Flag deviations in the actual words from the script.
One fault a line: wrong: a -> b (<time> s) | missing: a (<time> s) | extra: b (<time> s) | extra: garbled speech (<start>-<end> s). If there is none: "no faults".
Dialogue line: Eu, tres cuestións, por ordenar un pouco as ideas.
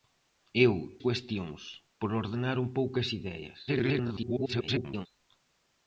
missing: tres (0.7 s)
extra: garbled speech (3.7-5.1 s)